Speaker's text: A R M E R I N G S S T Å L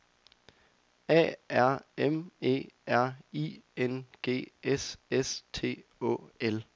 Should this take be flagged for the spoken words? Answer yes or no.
no